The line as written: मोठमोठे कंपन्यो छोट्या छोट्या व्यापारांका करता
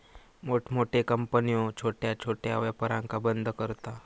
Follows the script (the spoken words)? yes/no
no